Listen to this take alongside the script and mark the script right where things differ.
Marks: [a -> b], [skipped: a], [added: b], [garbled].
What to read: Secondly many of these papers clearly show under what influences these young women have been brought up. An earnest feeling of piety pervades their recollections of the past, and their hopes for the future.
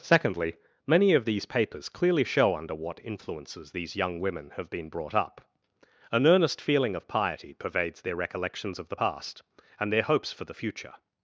Secondly many of these papers clearly show under what influences these young women have been brought up. An earnest feeling of piety pervades their recollections of the past, and their hopes for the future.